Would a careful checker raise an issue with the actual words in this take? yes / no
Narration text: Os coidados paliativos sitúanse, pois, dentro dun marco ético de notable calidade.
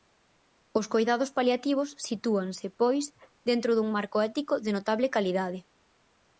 no